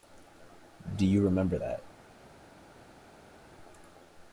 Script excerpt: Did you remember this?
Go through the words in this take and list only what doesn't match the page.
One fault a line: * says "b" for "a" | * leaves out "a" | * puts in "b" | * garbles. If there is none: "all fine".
* says "Do" for "Did"
* says "that" for "this"